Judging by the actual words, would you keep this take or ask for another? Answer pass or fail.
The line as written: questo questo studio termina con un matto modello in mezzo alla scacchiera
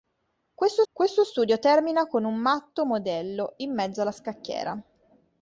pass